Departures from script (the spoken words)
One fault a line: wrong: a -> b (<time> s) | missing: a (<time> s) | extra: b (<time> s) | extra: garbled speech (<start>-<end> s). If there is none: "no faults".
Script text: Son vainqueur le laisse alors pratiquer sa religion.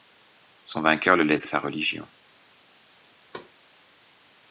missing: alors pratiquer (1.5 s)